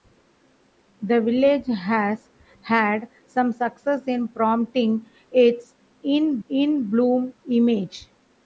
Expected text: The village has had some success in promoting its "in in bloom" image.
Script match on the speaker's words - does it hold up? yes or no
yes